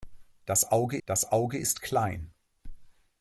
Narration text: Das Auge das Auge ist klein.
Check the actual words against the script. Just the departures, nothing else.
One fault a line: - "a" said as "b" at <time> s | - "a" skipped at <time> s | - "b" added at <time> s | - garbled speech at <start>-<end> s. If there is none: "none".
none